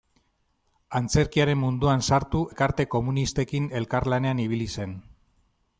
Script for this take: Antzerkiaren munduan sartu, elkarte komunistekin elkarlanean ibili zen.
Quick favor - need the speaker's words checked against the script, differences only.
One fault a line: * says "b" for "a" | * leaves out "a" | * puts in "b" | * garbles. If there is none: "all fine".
all fine